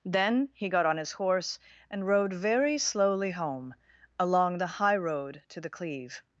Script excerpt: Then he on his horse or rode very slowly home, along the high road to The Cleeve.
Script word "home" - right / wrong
right